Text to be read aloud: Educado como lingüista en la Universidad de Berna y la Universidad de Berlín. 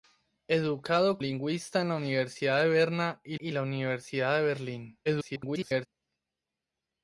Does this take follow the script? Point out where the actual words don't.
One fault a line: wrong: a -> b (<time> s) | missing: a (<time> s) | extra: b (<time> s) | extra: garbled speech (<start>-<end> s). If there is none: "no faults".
missing: como (1.2 s)
extra: y (3.4 s)
extra: garbled speech (5.1-5.9 s)